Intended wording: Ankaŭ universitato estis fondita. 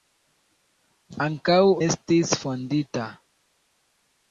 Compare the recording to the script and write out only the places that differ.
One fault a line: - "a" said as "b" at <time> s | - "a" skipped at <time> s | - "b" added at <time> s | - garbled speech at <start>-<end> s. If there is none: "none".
- "universitato" skipped at 1.6 s